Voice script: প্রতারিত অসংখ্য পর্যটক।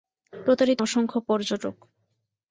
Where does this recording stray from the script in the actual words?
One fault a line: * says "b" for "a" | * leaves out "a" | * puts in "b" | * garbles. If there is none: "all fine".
all fine